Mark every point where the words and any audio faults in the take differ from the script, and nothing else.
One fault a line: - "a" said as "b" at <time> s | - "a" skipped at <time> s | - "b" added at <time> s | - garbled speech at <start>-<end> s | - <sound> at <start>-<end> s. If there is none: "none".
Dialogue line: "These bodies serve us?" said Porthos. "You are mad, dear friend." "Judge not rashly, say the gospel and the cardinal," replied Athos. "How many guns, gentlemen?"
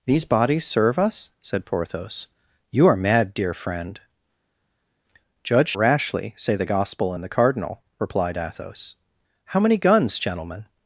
- "not" skipped at 5.8 s